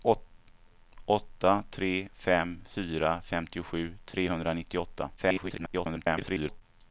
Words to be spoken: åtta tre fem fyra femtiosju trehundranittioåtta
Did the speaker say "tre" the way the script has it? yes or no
yes